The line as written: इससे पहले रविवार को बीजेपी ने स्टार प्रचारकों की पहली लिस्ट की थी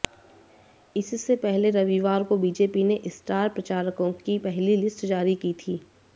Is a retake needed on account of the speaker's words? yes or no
yes